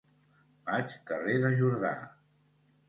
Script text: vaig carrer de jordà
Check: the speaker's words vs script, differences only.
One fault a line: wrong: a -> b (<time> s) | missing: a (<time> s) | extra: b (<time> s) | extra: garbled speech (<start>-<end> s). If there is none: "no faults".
no faults